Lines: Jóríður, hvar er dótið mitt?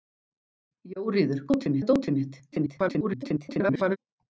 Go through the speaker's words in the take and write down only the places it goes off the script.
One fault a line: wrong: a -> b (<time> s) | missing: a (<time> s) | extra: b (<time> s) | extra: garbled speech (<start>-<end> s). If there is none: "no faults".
wrong: hvar -> dótið (1.5 s)
extra: garbled speech (2.5-4.0 s)